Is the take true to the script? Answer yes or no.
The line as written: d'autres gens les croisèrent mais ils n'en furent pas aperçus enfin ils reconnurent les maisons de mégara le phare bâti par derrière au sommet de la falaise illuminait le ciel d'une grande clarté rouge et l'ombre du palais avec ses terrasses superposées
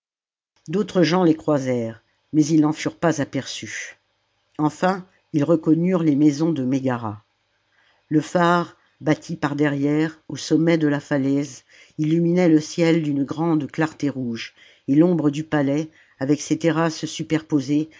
yes